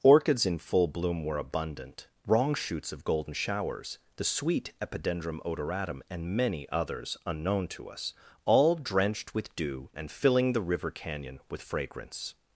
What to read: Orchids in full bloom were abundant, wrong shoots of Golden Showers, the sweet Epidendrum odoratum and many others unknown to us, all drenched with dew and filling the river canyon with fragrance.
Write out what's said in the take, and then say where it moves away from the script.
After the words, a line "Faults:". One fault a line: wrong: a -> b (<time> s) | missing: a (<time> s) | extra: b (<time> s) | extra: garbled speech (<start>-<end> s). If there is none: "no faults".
Orchids in full bloom were abundant, wrong shoots of Golden Showers, the sweet Epidendrum odoratum and many others unknown to us, all drenched with dew and filling the river canyon with fragrance.
Faults:
no faults